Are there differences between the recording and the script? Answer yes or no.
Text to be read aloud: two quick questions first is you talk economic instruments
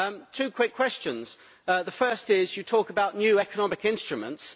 yes